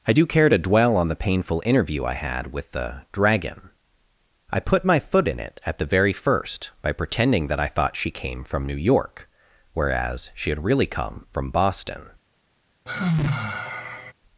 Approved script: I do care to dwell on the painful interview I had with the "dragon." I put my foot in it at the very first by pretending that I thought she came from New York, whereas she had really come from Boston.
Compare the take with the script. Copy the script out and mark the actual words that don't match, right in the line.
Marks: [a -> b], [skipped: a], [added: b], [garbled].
I do care to dwell on the painful interview I had with the "dragon." I put my foot in it at the very first by pretending that I thought she came from New York, whereas she had really come from Boston.